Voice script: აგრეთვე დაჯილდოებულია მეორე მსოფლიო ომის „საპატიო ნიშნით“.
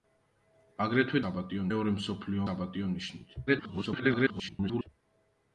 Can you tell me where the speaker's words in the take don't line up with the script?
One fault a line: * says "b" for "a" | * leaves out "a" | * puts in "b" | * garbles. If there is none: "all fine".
* says "საპატიო" for "დაჯილდოებულია"
* leaves out "ომის"
* garbles